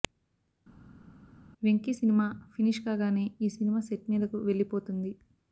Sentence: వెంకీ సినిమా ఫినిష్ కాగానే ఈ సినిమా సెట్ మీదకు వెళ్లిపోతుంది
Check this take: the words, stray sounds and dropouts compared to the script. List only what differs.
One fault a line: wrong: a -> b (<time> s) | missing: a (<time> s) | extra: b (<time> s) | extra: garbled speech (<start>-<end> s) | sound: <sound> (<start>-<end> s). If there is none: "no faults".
no faults